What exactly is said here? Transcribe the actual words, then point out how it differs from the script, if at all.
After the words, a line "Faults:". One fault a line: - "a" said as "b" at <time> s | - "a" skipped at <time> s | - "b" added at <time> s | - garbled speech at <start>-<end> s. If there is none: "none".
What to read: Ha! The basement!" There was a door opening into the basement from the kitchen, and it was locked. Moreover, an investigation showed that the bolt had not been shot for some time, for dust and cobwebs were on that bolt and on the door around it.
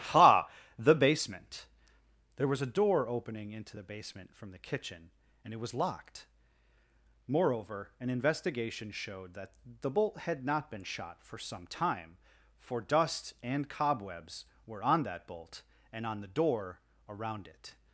Ha! The basement!" There was a door opening into the basement from the kitchen, and it was locked. Moreover, an investigation showed that the bolt had not been shot for some time, for dust and cobwebs were on that bolt and on the door around it.
Faults:
none